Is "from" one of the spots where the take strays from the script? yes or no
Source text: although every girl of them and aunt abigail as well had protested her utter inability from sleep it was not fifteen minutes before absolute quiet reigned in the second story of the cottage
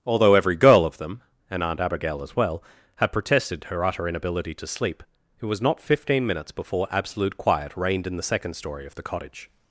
yes